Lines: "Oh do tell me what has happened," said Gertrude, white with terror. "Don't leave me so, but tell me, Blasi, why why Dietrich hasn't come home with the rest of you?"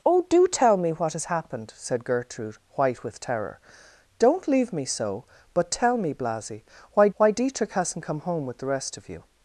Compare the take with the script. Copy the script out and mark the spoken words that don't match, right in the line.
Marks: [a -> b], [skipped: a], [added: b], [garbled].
"Oh do tell me what has happened," said Gertrude, white with terror. "Don't leave me so, but tell me, Blasi, why why Dietrich hasn't come home with the rest of you?"